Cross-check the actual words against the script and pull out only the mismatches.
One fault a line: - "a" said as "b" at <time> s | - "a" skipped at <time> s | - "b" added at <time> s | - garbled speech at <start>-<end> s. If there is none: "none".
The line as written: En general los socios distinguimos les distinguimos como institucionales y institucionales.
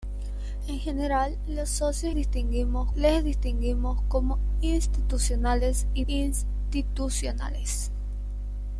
none